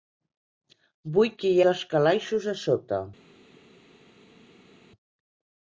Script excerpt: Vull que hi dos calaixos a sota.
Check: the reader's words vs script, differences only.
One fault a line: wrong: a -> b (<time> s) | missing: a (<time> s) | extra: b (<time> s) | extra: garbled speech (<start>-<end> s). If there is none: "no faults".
no faults